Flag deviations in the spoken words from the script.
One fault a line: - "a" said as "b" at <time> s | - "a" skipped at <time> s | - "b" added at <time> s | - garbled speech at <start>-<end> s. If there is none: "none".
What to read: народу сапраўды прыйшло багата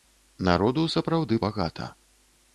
- "прыйшло" skipped at 1.4 s